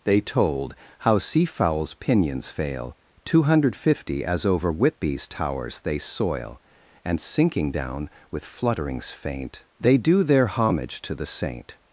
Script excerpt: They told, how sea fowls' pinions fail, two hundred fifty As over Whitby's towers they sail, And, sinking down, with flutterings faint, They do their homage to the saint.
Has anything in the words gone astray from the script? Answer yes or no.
yes